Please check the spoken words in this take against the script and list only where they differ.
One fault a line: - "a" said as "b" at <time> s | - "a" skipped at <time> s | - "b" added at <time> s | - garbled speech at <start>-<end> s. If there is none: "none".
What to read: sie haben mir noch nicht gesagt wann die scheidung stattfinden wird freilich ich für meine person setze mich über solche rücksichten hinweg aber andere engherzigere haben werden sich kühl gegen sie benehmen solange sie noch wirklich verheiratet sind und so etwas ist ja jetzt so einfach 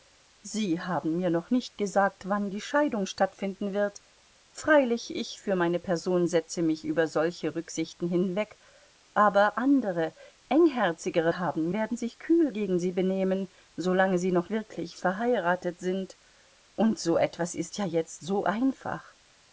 none